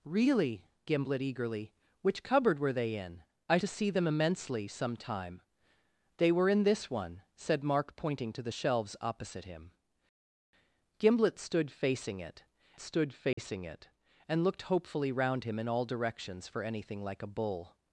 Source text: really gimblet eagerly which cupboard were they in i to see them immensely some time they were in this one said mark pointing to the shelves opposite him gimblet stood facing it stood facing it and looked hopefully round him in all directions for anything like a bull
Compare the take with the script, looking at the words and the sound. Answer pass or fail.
fail